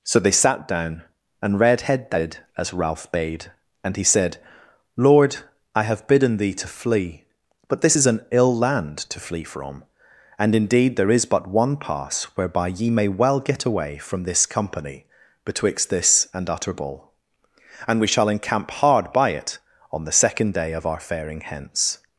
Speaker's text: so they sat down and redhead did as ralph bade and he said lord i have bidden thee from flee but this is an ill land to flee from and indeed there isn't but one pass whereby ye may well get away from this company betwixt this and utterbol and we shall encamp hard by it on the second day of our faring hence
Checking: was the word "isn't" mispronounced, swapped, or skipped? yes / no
yes